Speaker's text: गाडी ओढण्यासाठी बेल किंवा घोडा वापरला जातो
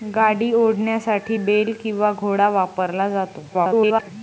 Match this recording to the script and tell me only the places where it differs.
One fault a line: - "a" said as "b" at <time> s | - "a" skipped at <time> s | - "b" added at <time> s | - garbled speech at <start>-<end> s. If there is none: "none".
- garbled speech at 3.5-4.1 s